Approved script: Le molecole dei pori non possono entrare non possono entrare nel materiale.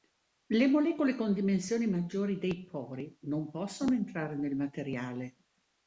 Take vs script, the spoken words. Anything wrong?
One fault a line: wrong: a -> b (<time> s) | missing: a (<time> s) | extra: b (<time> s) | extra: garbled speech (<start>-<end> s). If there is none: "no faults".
wrong: dei pori non possono entrare -> con dimensioni maggiori dei pori (1.1 s)